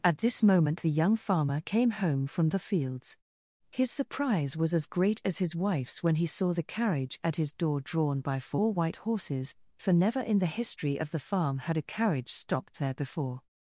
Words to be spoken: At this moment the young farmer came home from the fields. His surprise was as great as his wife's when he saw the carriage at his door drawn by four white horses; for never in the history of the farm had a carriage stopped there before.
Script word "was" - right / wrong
right